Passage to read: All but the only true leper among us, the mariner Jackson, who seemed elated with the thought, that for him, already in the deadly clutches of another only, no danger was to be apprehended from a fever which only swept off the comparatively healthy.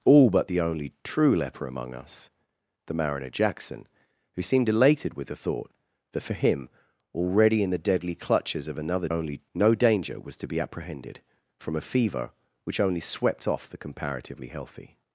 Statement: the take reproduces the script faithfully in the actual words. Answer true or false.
true